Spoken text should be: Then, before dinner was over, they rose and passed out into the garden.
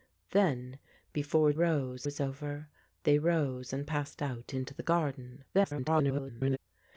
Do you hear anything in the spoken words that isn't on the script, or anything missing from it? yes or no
yes